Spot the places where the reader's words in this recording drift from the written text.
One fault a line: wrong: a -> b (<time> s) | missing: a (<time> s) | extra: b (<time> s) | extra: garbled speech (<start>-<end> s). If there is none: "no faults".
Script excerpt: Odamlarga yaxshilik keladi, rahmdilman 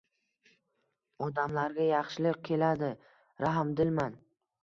no faults